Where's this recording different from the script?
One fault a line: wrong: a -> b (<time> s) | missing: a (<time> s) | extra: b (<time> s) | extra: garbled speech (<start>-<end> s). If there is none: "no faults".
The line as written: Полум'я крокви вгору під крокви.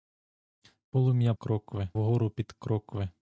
no faults